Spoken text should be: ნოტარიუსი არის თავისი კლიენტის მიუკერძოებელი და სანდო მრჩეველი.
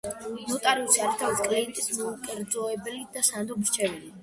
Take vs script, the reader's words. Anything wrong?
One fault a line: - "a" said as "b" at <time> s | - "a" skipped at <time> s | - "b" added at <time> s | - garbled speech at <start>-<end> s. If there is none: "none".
none